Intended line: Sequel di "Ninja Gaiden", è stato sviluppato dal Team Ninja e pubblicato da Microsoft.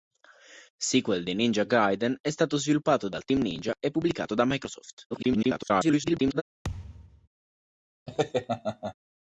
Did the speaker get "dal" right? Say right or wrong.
right